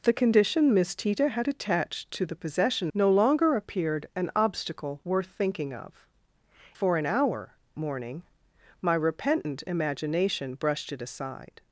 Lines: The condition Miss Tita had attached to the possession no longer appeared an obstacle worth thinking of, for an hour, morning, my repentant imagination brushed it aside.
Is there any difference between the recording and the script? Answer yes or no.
no